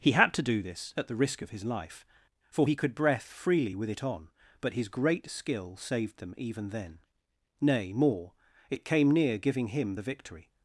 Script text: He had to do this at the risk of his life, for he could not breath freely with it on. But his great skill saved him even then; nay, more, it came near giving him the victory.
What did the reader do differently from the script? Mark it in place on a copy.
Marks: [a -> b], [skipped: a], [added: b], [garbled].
He had to do this at the risk of his life, for he could [skipped: not] breath freely with it on. But his great skill saved [him -> them] even then; nay, more, it came near giving him the victory.